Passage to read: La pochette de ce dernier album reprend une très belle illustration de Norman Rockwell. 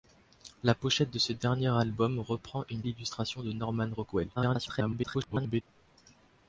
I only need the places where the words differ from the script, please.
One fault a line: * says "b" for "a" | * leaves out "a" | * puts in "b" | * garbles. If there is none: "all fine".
* leaves out "très belle"
* garbles